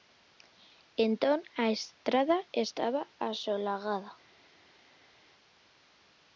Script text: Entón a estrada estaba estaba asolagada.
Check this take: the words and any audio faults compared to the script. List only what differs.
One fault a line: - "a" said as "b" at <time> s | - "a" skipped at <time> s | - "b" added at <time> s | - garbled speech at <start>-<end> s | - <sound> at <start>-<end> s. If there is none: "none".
- "estaba" skipped at 3.0 s